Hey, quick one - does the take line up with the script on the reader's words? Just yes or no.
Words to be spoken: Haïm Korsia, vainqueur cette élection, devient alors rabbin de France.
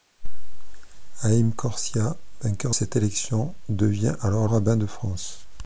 yes